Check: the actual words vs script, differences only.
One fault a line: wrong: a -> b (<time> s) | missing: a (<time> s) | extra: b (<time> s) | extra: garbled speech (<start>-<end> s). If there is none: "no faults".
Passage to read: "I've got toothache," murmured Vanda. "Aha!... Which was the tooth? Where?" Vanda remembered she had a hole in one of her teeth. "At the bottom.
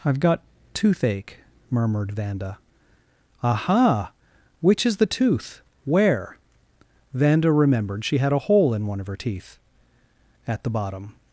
wrong: was -> is (4.8 s)